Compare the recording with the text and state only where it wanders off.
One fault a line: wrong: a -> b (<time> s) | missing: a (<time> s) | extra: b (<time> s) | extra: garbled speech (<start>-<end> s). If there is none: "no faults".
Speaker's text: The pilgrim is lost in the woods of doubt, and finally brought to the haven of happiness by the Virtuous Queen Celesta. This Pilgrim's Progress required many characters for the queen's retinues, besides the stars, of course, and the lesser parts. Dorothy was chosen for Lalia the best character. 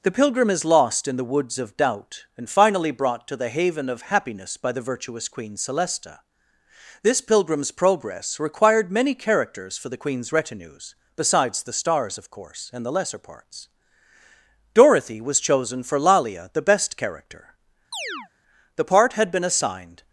extra: The part had been assigned (18.7 s)